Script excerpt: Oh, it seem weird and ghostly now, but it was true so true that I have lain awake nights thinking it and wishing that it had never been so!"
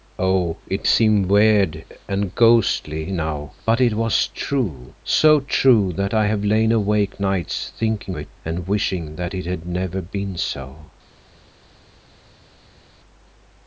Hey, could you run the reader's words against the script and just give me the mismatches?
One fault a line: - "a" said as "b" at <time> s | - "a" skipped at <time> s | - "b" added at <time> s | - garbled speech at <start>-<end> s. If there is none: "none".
none